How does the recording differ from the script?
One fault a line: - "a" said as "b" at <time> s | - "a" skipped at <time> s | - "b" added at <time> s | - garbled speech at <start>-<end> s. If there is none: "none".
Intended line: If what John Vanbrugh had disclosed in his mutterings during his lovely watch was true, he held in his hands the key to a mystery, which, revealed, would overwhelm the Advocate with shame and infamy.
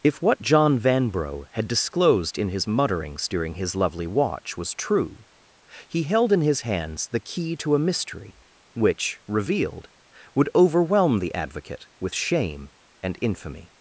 none